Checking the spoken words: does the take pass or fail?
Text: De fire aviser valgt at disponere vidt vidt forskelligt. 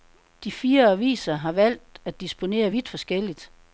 fail